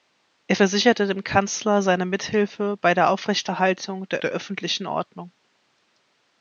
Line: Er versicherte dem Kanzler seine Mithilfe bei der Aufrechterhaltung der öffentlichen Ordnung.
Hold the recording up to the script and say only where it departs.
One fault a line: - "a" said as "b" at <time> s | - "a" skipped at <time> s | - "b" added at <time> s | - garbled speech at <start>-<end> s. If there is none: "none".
- "der" added at 4.2 s